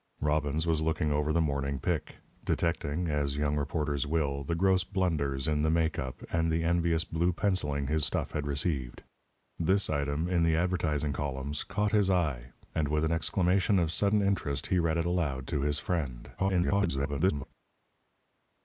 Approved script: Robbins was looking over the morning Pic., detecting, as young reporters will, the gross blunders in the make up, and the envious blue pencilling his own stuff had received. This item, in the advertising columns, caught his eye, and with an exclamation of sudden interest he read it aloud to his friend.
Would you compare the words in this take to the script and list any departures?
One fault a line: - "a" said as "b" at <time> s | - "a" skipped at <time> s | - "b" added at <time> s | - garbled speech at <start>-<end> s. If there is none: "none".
- "own" skipped at 8.0 s
- garbled speech at 16.4-17.5 s